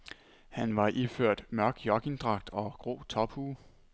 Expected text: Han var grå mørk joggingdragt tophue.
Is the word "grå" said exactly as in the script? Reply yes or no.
no